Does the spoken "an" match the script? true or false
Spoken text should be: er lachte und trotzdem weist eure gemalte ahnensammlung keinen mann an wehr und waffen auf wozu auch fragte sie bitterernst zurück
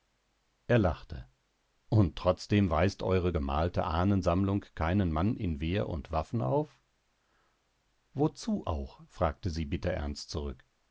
false